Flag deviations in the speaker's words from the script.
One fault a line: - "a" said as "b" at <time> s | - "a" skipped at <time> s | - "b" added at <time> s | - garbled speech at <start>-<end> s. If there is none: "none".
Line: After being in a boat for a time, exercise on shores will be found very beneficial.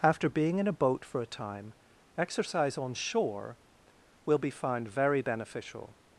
- "shores" said as "shore" at 3.0 s